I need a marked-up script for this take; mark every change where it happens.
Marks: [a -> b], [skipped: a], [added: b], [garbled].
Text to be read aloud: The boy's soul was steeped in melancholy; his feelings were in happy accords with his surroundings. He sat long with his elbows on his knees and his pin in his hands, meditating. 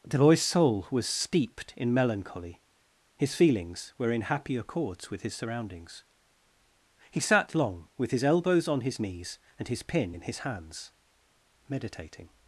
The boy's soul was steeped in melancholy; his feelings were in happy accords with his surroundings. He sat long with his elbows on his knees and his pin in his hands, meditating.